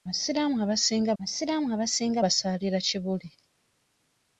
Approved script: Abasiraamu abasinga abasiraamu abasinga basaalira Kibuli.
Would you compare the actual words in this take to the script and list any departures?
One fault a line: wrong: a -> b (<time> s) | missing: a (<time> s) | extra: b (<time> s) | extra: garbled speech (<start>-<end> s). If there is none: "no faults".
no faults